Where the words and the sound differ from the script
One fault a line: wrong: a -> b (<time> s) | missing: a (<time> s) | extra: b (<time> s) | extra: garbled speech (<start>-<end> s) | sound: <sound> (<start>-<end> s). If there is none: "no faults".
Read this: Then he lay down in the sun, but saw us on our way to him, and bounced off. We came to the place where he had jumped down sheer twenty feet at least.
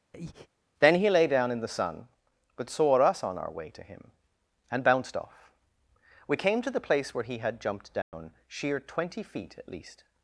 sound: breath (0.1-0.5 s)
sound: dropout (8.0-8.1 s)